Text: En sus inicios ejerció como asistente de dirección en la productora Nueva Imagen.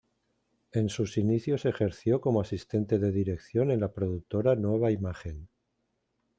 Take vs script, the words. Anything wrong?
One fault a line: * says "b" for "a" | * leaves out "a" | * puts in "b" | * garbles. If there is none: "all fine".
all fine